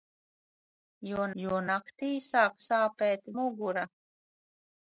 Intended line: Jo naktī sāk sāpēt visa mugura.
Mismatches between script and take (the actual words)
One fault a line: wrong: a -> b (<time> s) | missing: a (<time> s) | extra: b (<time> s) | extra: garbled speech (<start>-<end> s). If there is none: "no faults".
extra: jo (1.4 s)
missing: visa (3.3 s)